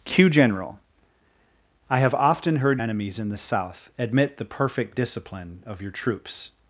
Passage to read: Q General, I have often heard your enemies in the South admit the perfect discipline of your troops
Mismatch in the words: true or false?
true